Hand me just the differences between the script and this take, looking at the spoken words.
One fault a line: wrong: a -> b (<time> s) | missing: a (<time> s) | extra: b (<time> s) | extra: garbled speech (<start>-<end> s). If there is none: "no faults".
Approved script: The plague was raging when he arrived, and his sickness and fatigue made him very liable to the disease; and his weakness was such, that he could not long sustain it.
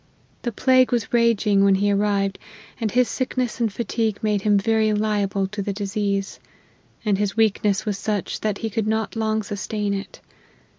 no faults